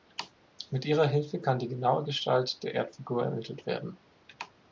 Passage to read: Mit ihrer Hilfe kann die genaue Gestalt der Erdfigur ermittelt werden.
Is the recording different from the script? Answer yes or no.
no